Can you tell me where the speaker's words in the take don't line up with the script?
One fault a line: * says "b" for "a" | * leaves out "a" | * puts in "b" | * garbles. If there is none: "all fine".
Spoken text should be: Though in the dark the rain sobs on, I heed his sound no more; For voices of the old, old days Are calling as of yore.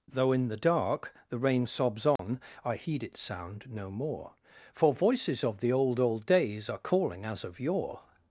* says "its" for "his"